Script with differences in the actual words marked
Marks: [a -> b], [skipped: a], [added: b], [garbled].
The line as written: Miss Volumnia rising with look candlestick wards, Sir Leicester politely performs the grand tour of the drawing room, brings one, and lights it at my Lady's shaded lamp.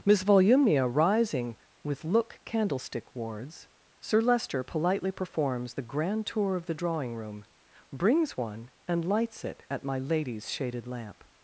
Miss Volumnia rising with look candlestick wards, Sir Leicester politely performs the grand tour of the drawing room, brings one, and lights it at my Lady's shaded lamp.